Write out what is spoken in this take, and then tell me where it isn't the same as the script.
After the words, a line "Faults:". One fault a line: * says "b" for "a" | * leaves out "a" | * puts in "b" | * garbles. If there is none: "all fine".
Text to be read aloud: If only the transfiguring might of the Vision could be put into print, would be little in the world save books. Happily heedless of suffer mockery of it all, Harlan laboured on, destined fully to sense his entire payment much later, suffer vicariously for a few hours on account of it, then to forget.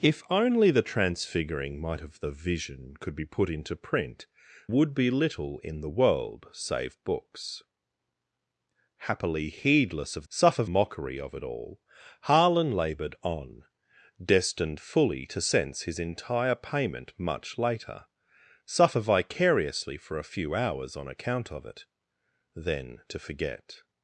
If only the transfiguring might of the Vision could be put into print, would be little in the world save books. Happily heedless of suffer mockery of it all, Harlan laboured on, destined fully to sense his entire payment much later, suffer vicariously for a few hours on account of it, then to forget.
Faults:
all fine